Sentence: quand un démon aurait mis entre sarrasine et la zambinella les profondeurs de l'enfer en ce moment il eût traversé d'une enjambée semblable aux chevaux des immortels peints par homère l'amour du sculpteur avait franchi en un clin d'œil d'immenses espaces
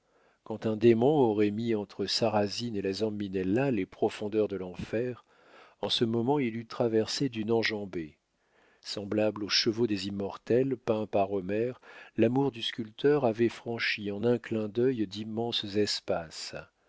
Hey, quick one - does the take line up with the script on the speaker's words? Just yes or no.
yes